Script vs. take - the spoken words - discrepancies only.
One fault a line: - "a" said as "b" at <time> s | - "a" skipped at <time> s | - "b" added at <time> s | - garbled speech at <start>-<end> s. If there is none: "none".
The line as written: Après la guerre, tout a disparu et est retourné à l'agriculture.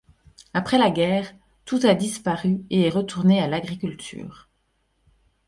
none